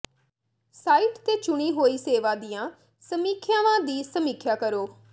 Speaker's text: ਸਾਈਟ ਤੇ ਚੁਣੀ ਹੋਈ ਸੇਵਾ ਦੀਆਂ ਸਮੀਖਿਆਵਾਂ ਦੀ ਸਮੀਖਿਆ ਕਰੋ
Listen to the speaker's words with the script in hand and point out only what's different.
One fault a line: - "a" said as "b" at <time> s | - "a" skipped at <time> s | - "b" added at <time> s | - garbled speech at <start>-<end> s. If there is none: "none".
none